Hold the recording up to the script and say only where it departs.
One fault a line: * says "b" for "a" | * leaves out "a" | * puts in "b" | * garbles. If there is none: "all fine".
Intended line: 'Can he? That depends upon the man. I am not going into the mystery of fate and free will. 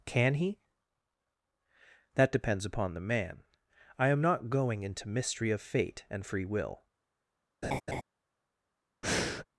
* leaves out "the"